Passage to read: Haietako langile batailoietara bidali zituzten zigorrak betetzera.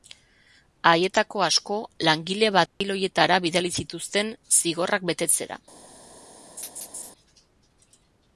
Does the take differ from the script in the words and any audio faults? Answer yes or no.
yes